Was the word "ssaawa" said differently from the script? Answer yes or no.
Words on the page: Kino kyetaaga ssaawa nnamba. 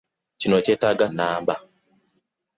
yes